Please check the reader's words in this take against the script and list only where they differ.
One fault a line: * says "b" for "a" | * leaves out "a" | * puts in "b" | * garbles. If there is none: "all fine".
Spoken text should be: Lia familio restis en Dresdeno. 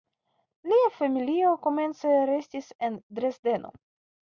* puts in "komence"